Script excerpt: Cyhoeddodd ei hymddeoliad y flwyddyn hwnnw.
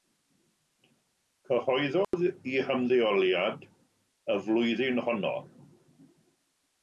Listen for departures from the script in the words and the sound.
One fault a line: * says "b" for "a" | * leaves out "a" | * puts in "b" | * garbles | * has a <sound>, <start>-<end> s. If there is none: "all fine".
* has a dropout, 2.0-2.1 s
* says "honno" for "hwnnw"